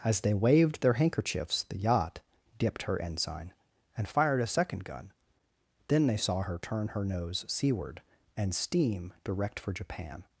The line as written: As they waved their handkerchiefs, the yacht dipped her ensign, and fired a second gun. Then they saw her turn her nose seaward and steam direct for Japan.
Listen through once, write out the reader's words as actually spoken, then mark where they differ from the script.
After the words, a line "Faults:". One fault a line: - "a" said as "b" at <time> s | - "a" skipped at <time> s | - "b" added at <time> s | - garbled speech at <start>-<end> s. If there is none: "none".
As they waved their handkerchiefs, the yacht dipped her ensign, and fired a second gun. Then they saw her turn her nose seaward and steam direct for Japan.
Faults:
none